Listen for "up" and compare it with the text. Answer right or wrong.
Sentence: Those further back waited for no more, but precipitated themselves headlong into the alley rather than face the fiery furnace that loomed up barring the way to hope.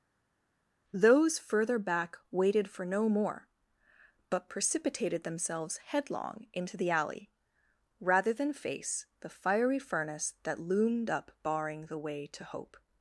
right